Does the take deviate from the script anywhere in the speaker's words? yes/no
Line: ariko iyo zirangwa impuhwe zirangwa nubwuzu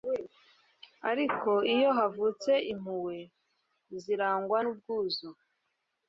yes